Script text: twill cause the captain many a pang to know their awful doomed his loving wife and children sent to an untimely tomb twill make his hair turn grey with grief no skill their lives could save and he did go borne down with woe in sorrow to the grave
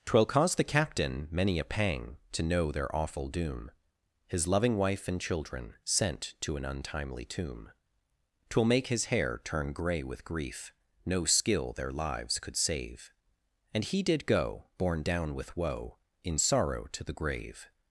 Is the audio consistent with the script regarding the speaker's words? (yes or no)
no